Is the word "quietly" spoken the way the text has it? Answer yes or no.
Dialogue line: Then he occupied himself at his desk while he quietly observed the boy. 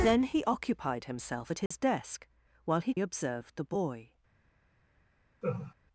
no